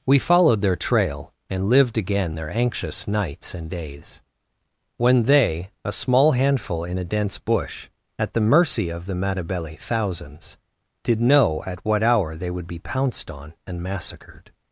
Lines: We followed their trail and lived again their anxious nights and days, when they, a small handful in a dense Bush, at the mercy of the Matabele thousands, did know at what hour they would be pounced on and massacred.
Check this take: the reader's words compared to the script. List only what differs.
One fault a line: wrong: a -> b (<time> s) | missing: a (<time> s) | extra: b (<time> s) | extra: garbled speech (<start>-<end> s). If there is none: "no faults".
no faults